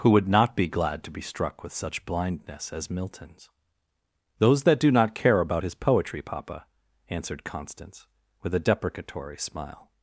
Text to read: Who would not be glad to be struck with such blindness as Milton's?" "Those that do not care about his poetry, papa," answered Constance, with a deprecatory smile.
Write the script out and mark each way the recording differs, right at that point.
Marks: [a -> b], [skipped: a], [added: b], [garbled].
Who would not be glad to be struck with such blindness as Milton's?" "Those that do not care about his poetry, papa," answered Constance, with a deprecatory smile.